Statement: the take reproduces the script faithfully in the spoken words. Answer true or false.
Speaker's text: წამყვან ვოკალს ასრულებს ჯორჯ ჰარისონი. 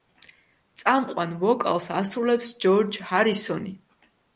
true